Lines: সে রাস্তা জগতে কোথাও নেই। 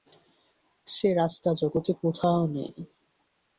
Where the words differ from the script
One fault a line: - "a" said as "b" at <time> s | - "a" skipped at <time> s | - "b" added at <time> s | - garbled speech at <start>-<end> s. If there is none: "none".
none